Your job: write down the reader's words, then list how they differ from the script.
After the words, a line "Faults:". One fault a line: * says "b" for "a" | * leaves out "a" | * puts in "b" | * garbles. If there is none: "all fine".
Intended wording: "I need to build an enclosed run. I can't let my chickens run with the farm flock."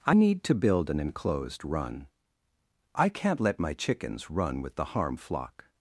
"I need to build an enclosed run. I can't let my chickens run with the harm flock."
Faults:
* says "harm" for "farm"